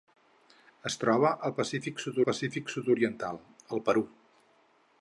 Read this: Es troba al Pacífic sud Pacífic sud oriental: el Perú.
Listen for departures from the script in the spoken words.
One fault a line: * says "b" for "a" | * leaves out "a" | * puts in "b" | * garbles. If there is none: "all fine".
all fine